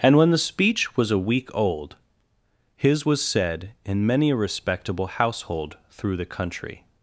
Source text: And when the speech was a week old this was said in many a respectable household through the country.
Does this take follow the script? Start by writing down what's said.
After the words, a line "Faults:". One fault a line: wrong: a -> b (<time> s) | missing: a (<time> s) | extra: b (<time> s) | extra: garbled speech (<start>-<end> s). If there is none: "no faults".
And when the speech was a week old his was said in many a respectable household through the country.
Faults:
wrong: this -> his (2.8 s)